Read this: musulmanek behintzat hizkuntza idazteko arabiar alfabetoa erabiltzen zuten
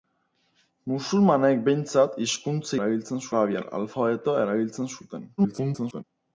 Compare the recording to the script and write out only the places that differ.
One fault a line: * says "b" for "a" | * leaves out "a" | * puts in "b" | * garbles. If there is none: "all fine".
* says "erabiltzen" for "idazteko"
* garbles